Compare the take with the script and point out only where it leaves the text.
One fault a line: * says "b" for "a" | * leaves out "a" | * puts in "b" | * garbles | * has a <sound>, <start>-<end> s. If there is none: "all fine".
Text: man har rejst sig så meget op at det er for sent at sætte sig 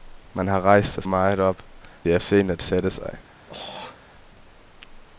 * leaves out "så"
* leaves out "at"
* leaves out "for"
* has a throat clearing, 3.5-4.0 s